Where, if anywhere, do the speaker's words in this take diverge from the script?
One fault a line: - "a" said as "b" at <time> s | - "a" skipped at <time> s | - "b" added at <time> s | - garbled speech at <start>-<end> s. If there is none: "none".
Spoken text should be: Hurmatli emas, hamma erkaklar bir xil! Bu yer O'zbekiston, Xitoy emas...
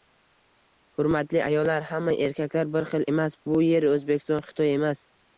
- "emas" said as "ayollar" at 1.5 s
- "emas" added at 3.1 s